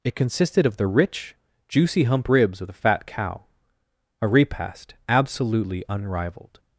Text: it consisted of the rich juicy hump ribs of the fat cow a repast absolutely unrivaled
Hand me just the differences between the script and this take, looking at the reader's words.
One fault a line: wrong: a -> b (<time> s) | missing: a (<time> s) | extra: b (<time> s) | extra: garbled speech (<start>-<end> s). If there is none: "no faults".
no faults